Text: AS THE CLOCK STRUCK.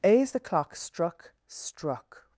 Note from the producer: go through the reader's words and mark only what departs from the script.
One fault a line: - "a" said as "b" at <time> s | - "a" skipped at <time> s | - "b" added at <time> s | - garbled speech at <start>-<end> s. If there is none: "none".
- "STRUCK" added at 1.5 s